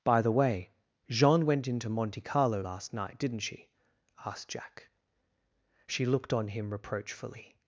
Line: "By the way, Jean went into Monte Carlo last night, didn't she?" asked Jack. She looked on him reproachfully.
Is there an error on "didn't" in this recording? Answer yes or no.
no